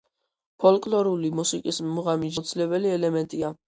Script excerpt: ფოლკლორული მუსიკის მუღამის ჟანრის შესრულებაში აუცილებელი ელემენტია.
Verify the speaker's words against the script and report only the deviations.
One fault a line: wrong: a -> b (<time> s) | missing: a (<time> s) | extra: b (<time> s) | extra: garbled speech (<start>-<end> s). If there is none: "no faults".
missing: ჟანრის შესრულებაში (2.4 s)